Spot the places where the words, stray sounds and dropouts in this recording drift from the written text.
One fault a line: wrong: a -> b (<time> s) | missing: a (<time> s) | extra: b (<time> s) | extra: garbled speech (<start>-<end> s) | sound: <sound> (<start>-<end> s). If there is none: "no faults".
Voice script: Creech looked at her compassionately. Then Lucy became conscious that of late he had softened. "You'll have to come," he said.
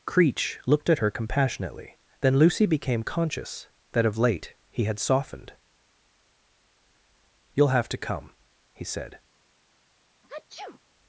sound: sneeze (10.2-10.8 s)